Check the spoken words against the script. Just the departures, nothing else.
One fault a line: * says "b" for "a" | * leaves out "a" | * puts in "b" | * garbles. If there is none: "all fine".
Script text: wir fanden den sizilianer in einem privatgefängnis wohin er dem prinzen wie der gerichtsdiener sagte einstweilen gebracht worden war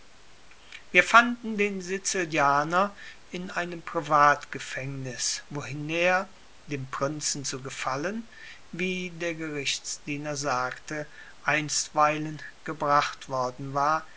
* puts in "zu gefallen"